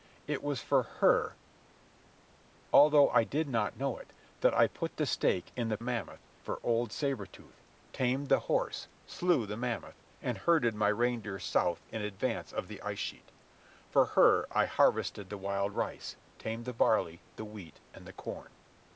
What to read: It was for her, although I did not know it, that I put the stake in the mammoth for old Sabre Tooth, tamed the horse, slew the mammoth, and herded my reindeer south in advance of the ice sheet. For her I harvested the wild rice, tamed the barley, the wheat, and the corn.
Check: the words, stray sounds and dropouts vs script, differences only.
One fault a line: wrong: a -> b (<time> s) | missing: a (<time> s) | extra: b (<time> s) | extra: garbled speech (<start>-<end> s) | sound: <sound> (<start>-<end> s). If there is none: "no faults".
no faults